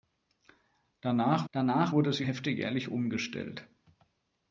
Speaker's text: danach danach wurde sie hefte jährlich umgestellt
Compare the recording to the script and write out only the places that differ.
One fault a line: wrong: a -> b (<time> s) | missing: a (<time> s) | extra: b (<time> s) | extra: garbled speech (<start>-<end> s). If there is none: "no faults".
no faults